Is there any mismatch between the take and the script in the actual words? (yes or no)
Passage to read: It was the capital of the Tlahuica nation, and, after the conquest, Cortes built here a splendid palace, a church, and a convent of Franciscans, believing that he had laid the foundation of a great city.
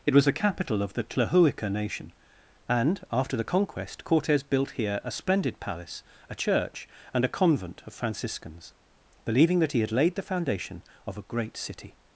no